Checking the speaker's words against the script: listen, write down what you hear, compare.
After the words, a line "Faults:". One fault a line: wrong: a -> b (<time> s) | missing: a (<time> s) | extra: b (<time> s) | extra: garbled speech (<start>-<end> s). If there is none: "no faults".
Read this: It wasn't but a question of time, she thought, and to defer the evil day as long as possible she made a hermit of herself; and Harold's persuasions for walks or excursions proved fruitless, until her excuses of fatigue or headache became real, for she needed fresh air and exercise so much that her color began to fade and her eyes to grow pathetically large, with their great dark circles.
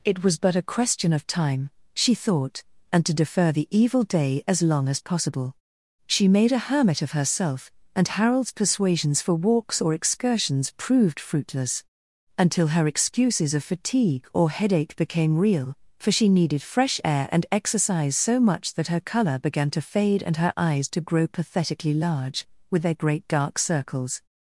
It was but a question of time, she thought, and to defer the evil day as long as possible she made a hermit of herself; and Harold's persuasions for walks or excursions proved fruitless, until her excuses of fatigue or headache became real, for she needed fresh air and exercise so much that her color began to fade and her eyes to grow pathetically large, with their great dark circles.
Faults:
wrong: wasn't -> was (0.2 s)